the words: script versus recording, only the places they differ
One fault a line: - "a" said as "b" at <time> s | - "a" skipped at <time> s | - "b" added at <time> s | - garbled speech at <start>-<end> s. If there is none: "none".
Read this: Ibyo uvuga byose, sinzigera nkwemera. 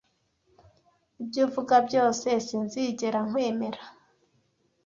none